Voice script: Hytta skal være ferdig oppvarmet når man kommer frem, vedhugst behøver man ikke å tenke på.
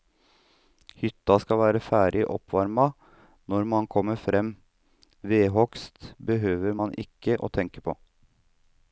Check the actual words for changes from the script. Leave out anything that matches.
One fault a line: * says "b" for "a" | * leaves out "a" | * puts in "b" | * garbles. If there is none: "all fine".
all fine